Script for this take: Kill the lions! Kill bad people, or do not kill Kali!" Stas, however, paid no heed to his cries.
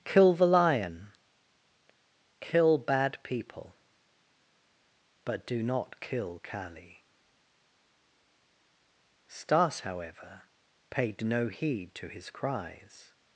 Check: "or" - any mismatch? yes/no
yes